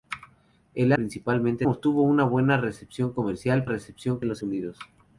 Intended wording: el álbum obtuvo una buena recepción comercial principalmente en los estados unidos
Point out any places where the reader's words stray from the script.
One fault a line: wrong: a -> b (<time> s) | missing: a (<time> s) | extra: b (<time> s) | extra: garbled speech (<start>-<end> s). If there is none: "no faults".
wrong: álbum -> principalmente (0.9 s)
wrong: principalmente -> recepción (3.6 s)
missing: estados (4.4 s)